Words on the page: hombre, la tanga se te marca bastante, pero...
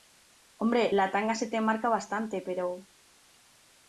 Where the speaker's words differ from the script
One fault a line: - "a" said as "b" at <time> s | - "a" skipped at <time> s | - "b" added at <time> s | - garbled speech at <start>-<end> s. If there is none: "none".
none